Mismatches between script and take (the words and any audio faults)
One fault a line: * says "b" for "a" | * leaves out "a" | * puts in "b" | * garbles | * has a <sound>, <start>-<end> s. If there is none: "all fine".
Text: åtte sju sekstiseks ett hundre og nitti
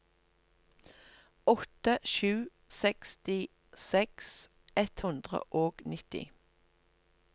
all fine